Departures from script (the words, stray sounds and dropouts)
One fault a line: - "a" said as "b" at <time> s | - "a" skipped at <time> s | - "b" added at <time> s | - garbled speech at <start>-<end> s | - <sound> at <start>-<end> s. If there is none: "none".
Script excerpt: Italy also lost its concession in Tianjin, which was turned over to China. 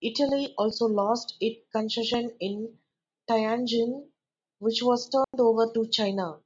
- dropout at 5.2-5.3 s